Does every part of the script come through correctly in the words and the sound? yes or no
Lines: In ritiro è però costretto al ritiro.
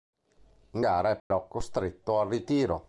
no